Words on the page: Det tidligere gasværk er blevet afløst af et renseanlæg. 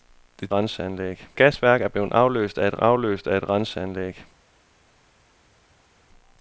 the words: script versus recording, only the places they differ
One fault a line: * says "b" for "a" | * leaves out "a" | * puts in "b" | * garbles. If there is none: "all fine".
* says "renseanlæg" for "tidligere"
* puts in "afløst af et"